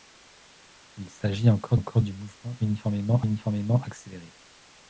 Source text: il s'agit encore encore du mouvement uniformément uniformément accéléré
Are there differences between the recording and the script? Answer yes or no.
no